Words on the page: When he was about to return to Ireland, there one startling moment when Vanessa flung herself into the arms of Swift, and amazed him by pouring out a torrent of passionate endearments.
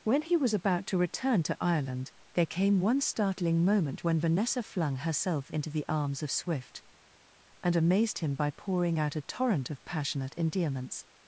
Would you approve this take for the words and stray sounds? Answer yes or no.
no